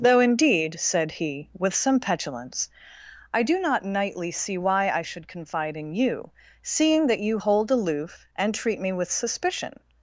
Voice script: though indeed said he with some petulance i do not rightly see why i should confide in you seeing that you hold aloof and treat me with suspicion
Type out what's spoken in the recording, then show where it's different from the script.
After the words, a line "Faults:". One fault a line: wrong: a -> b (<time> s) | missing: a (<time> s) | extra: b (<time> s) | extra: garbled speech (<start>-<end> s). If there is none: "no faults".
though indeed said he with some petulance i do not nightly see why i should confide in you seeing that you hold aloof and treat me with suspicion
Faults:
wrong: rightly -> nightly (3.9 s)